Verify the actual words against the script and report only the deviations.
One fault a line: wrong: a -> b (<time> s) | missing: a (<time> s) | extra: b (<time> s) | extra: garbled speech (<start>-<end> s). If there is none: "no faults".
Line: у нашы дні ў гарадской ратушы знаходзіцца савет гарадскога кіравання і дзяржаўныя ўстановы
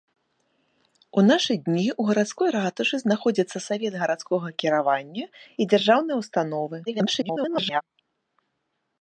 extra: garbled speech (6.9-7.8 s)